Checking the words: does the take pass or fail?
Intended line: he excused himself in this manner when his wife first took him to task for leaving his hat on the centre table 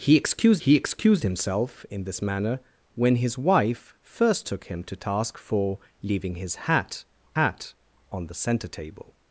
fail